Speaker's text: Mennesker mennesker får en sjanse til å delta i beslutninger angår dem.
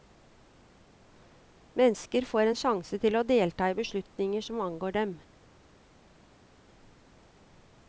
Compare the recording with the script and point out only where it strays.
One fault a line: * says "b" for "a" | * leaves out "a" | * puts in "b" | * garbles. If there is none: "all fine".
* leaves out "mennesker"
* puts in "som"